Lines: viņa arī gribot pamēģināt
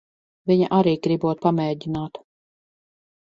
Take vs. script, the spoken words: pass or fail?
pass